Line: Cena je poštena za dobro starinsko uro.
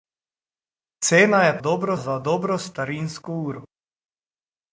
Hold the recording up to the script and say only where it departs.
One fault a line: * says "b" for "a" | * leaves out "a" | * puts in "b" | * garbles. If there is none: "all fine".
* says "dobro" for "poštena"